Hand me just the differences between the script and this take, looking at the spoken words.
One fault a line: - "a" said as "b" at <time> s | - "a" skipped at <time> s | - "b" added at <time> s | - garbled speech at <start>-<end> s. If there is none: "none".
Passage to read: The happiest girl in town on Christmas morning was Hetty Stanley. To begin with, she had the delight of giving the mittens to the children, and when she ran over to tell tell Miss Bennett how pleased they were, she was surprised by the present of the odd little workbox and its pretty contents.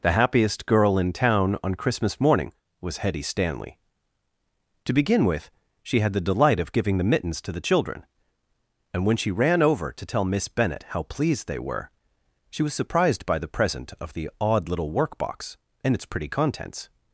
- "tell" skipped at 10.2 s